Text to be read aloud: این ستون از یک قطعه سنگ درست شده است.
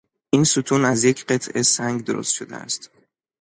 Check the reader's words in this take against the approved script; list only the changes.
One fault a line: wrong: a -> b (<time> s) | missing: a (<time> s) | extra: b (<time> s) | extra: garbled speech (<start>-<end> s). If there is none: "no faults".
no faults